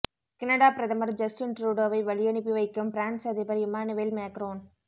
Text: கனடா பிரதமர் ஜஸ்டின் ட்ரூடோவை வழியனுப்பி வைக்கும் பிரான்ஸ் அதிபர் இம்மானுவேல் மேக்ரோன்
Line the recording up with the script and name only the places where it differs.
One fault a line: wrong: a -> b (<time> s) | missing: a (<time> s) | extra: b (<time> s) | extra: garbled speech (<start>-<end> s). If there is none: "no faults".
no faults